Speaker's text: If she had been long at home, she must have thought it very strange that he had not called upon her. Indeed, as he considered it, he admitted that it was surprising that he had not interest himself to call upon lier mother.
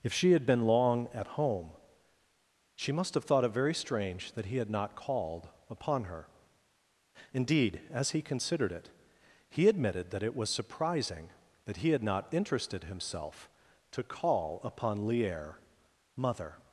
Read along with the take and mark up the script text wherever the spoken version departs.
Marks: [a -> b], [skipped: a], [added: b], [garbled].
If she had been long at home, she must have thought it very strange that he had not called upon her. Indeed, as he considered it, he admitted that it was surprising that he had not [interest -> interested] himself to call upon lier mother.